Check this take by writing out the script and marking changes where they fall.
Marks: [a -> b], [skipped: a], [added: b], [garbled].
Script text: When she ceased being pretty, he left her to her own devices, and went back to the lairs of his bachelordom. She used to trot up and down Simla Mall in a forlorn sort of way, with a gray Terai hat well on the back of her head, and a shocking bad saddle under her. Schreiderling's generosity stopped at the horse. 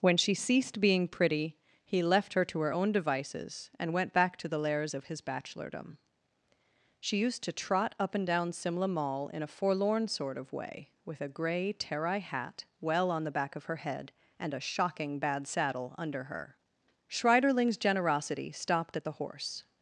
When she ceased being pretty, he left her to her own devices, and went back to the lairs of his bachelordom. She used to trot up and down Simla Mall in a forlorn sort of way, with a gray Terai hat well on the back of her head, and a shocking bad saddle under her. Schreiderling's generosity stopped at the horse.